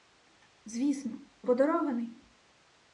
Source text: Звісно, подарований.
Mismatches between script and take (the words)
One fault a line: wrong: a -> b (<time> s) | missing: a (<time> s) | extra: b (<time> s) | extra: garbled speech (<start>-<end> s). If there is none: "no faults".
no faults